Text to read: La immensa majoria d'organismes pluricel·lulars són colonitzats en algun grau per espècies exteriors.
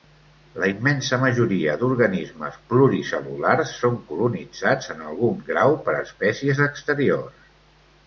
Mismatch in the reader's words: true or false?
false